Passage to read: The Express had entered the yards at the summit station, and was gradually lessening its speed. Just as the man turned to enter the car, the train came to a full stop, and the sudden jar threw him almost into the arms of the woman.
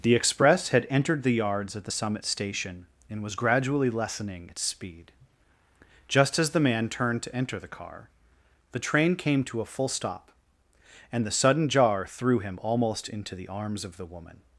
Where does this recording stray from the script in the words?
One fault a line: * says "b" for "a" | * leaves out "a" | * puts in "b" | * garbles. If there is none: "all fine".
all fine